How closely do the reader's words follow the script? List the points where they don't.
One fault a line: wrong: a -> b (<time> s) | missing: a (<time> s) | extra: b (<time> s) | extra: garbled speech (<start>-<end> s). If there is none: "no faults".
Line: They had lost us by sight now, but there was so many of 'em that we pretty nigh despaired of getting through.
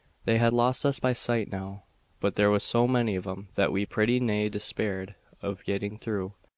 no faults